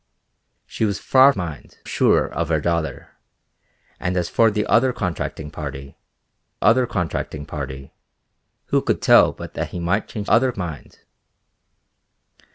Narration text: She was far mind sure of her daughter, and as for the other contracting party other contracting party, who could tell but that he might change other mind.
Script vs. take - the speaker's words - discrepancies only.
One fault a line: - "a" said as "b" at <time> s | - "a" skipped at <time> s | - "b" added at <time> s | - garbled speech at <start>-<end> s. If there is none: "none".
none